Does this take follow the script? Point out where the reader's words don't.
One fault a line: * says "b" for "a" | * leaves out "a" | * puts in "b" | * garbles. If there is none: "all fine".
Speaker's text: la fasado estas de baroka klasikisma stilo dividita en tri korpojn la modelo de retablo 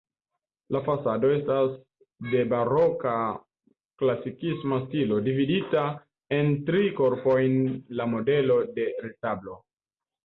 all fine